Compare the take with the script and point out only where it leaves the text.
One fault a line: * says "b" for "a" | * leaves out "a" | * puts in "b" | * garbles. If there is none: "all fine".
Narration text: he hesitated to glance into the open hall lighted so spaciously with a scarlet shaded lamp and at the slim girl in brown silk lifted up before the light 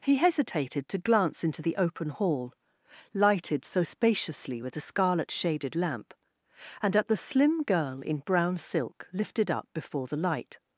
all fine